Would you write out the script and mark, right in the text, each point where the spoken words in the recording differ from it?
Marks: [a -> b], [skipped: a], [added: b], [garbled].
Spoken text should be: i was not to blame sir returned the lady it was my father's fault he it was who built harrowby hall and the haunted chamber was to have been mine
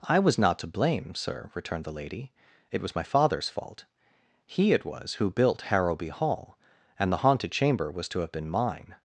i was not to blame sir returned the lady it was my father's fault he it was who built harrowby hall and the haunted chamber was to have been mine